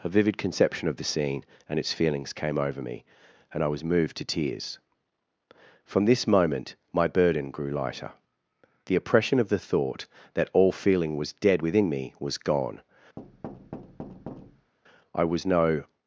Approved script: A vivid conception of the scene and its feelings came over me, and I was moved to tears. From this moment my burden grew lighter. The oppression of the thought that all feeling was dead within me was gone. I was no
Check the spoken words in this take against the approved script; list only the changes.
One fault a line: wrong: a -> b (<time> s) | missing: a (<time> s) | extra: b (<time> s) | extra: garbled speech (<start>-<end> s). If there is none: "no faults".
no faults